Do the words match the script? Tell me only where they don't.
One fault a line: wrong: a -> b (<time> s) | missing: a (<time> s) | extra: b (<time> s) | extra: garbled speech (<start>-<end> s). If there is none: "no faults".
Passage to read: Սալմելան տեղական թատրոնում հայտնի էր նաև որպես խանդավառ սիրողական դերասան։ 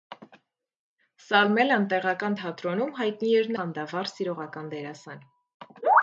missing: նաև որպես (3.5 s)